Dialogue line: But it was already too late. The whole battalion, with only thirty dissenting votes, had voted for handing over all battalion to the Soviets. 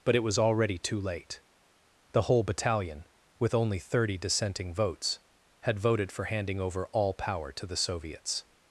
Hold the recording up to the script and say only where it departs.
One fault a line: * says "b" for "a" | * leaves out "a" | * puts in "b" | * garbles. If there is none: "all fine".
* says "power" for "battalion"